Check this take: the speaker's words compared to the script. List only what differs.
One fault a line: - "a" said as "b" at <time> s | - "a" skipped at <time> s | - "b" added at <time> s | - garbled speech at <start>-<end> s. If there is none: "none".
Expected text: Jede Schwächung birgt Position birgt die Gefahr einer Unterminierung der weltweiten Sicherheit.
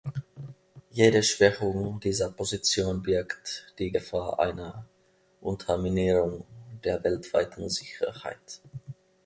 - "birgt" said as "dieser" at 2.0 s